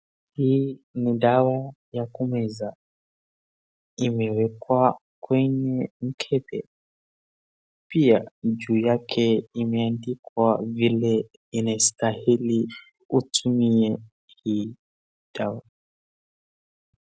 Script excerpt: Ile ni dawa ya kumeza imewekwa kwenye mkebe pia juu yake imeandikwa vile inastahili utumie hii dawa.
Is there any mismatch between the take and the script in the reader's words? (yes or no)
yes